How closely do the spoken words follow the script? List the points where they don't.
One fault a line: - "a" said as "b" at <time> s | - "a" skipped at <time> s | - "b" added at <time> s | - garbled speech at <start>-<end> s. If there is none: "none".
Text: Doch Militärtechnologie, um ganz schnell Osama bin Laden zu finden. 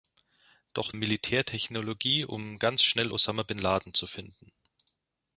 none